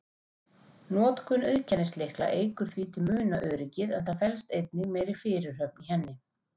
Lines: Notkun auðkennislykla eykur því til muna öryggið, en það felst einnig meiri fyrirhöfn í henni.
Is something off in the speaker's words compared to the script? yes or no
no